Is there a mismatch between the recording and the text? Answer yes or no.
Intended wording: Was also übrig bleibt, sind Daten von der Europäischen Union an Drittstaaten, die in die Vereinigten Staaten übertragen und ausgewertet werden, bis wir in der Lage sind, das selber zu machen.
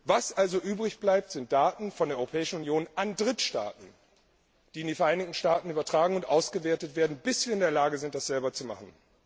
no